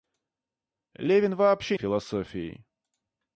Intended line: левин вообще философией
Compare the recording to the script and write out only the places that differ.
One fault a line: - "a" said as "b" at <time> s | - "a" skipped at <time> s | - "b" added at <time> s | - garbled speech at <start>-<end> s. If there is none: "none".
none